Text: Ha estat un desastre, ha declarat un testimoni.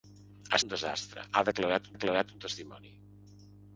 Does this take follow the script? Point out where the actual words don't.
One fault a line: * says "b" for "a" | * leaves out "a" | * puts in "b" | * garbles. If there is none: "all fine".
* leaves out "estat"
* puts in "declarat"